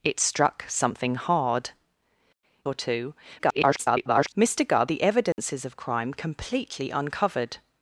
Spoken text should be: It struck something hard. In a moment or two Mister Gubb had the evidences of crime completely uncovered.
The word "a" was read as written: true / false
false